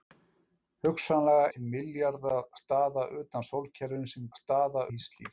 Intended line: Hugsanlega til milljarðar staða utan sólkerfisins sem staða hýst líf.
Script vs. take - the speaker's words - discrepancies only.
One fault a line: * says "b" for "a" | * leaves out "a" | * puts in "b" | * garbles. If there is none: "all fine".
all fine